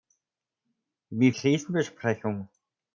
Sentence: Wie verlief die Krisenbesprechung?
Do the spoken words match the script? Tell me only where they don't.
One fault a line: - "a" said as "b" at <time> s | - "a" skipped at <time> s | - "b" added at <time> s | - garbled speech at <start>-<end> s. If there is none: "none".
- "verlief die" skipped at 1.3 s